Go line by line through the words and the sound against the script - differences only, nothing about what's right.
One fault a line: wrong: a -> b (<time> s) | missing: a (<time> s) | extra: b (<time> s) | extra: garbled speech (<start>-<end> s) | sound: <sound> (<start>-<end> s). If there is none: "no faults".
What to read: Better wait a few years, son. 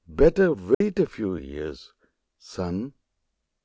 sound: dropout (0.7-0.8 s)